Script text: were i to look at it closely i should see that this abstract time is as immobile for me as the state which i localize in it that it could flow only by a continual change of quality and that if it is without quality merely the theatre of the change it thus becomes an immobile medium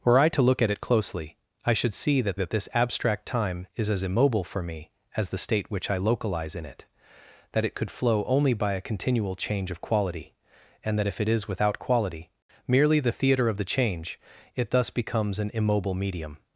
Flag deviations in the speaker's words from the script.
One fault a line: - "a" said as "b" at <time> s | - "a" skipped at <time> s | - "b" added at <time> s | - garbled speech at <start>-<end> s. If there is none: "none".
- "that" added at 2.3 s